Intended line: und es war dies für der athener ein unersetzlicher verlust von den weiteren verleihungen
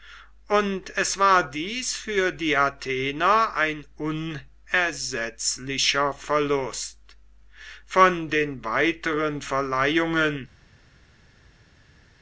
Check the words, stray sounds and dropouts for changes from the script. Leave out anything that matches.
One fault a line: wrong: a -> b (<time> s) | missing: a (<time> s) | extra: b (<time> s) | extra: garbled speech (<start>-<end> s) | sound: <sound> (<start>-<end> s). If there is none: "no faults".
wrong: der -> die (2.3 s)